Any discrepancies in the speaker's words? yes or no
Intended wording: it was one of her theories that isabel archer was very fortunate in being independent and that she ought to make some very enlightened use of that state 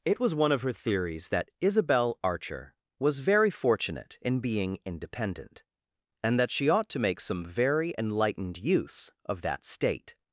no